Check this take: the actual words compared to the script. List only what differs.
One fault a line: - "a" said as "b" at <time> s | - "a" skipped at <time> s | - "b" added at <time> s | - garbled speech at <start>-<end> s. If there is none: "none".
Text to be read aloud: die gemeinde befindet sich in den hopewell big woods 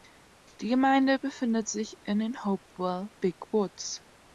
none